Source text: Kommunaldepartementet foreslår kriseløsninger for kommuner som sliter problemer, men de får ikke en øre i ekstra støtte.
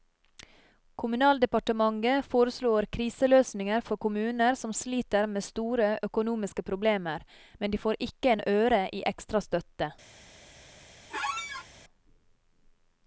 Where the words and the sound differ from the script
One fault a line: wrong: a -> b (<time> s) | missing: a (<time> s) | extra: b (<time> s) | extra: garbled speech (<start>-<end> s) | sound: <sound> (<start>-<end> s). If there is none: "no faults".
extra: med store økonomiske (5.3 s)
sound: squeak (11.1-11.7 s)